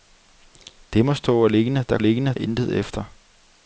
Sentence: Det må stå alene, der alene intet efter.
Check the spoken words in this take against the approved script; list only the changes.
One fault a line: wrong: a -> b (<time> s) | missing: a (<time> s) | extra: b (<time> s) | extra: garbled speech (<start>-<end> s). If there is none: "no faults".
no faults